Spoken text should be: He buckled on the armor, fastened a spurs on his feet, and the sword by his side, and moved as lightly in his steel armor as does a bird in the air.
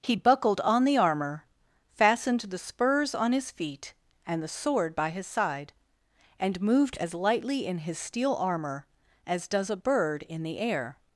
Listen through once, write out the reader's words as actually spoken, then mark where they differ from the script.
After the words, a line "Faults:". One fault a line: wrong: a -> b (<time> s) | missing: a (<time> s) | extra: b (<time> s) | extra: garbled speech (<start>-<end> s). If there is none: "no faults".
He buckled on the armor, fastened the spurs on his feet, and the sword by his side, and moved as lightly in his steel armor as does a bird in the air.
Faults:
wrong: a -> the (2.4 s)